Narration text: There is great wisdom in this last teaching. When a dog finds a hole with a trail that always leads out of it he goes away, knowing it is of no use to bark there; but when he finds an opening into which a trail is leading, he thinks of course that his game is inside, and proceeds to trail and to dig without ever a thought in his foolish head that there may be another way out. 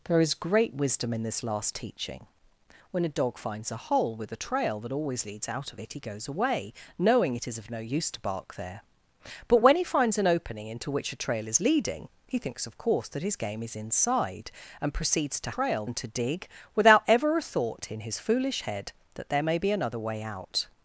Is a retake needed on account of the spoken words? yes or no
no